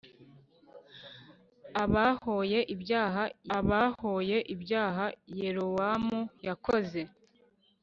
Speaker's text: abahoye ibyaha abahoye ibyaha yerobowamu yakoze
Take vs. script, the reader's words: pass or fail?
pass